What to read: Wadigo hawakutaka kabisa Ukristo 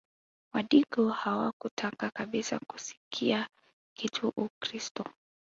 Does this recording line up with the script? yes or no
no